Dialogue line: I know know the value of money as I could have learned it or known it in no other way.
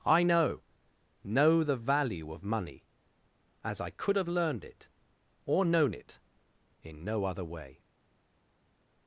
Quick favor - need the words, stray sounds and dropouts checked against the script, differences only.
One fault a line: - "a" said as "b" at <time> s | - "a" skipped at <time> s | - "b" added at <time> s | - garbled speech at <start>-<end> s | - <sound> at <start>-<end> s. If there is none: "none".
none